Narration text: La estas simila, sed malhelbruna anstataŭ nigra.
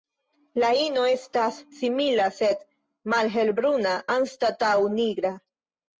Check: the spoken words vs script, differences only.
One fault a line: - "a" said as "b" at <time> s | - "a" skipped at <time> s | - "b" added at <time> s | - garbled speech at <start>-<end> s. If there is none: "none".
- "ino" added at 0.8 s